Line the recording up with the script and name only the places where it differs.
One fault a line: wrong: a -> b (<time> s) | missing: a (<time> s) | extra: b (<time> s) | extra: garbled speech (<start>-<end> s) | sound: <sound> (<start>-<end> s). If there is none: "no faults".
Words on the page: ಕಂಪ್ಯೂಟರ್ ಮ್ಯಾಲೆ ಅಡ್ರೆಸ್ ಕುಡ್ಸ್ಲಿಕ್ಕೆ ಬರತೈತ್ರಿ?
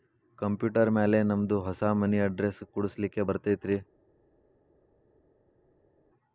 extra: ನಮ್ದು ಹೊಸಾ ಮನಿ (1.2 s)